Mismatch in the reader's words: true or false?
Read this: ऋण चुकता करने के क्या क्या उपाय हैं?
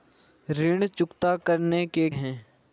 true